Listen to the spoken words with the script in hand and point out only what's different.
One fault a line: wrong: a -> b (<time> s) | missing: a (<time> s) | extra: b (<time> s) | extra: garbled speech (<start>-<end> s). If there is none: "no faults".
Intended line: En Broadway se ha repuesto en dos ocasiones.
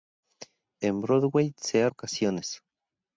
missing: repuesto en dos (1.9 s)